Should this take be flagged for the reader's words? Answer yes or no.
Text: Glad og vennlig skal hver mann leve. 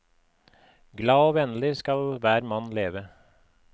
no